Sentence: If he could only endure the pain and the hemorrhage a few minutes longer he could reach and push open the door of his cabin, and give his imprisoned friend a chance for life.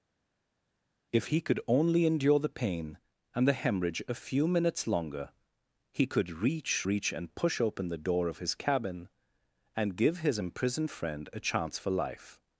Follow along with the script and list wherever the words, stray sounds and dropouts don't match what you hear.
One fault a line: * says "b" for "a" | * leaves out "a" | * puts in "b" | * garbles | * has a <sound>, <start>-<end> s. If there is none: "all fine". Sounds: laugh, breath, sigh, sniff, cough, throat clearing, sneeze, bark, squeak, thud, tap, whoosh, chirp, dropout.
* puts in "reach"